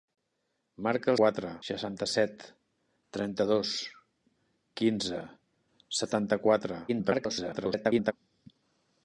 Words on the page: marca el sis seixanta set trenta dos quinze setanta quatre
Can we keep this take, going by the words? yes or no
no